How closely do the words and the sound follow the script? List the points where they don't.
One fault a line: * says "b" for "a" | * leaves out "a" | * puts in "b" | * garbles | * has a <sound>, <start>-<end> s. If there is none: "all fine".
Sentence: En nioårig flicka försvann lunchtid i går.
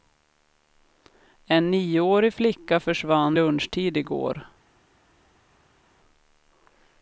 all fine